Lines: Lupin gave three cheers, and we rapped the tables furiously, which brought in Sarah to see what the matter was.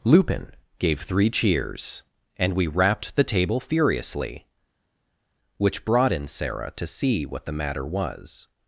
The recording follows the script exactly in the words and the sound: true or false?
false